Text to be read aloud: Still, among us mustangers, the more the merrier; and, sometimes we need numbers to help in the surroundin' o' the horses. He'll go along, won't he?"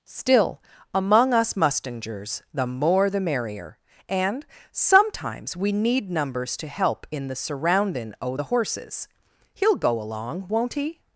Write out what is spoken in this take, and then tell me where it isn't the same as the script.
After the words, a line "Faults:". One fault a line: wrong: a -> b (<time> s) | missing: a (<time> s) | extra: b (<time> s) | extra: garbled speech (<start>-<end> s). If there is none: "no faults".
Still, among us mustangers, the more the merrier; and, sometimes we need numbers to help in the surroundin' o' the horses. He'll go along, won't he?"
Faults:
no faults